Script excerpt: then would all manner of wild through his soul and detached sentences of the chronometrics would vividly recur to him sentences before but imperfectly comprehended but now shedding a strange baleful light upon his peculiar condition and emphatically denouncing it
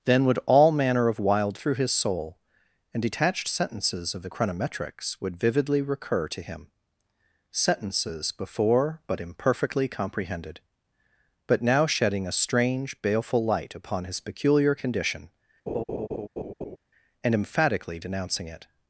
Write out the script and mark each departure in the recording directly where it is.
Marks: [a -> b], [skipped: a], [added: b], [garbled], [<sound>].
then would all manner of wild through his soul and detached sentences of the chronometrics would vividly recur to him sentences before but imperfectly comprehended but now shedding a strange baleful light upon his peculiar condition [laugh] and emphatically denouncing it